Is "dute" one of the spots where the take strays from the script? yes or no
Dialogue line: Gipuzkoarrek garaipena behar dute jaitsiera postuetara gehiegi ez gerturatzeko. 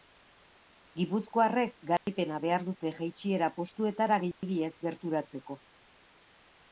no